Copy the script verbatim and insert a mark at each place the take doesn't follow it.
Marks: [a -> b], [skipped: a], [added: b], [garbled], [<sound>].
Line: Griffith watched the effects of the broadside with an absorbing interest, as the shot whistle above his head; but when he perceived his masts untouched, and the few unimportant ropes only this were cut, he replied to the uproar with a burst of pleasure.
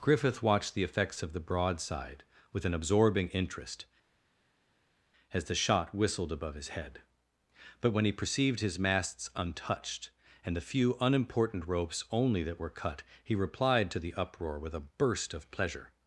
Griffith watched the effects of the broadside with an absorbing interest, as the shot [whistle -> whistled] above his head; but when he perceived his masts untouched, and the few unimportant ropes only [this -> that] were cut, he replied to the uproar with a burst of pleasure.